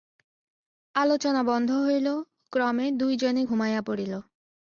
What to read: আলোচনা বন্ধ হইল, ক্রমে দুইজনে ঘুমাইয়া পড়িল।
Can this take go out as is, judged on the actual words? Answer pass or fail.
pass